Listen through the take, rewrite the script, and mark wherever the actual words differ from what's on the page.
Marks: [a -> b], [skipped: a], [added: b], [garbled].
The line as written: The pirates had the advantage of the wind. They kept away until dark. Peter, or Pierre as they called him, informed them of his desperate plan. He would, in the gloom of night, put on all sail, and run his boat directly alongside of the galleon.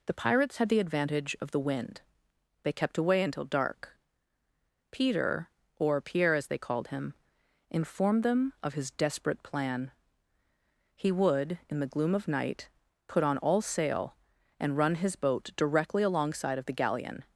The pirates had the advantage of the wind. They kept away until dark. Peter, or Pierre as they called him, informed them of his desperate plan. He would, in the gloom of night, put on all sail, and run his boat directly alongside of the galleon.